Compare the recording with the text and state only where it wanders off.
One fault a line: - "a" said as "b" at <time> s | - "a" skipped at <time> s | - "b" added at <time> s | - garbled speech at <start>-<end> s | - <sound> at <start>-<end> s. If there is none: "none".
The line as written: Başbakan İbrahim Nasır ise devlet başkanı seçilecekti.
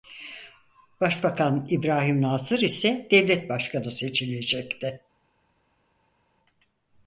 none